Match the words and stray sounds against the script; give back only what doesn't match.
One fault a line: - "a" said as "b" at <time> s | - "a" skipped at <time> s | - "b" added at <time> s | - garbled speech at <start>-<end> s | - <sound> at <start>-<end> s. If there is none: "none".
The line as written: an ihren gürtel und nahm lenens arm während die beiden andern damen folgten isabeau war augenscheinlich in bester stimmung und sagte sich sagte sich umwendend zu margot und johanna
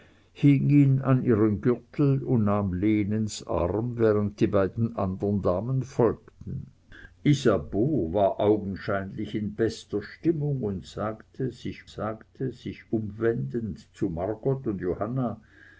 none